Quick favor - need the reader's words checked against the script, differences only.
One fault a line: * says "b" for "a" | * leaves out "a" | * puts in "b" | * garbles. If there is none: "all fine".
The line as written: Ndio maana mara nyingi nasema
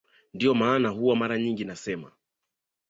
* puts in "huwa"